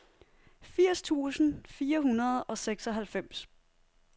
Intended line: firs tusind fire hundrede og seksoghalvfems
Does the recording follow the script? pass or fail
pass